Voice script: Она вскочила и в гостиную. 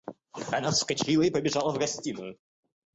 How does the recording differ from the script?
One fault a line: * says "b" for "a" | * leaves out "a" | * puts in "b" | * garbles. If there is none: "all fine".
* puts in "побежала"